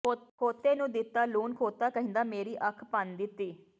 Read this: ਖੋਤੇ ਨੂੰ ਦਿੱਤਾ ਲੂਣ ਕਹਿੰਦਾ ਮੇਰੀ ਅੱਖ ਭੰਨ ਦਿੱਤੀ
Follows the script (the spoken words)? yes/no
no